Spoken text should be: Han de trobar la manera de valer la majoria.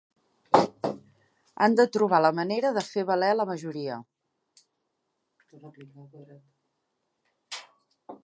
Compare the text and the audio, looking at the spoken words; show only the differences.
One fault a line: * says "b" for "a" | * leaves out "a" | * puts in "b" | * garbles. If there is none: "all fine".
* puts in "fer"